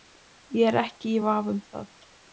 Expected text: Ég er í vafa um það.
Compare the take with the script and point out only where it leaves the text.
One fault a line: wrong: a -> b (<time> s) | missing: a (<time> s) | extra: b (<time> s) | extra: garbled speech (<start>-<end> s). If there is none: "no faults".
extra: ekki (0.8 s)